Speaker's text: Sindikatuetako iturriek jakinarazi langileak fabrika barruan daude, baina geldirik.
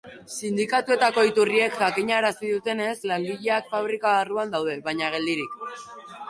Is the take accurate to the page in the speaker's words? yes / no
no